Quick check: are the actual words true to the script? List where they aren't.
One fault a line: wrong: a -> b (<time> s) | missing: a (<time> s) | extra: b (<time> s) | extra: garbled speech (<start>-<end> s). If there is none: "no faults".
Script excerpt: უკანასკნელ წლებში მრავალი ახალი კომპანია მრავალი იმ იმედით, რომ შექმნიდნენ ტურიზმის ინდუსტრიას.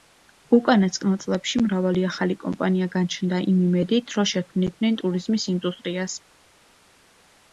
wrong: მრავალი -> გაჩნდა (3.0 s)